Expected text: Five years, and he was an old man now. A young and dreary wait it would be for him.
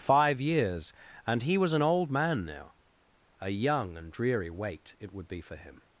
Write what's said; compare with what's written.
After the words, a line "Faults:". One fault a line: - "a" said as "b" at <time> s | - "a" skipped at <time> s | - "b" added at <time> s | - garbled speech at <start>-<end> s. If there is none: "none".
Five years, and he was an old man now. A young and dreary wait it would be for him.
Faults:
none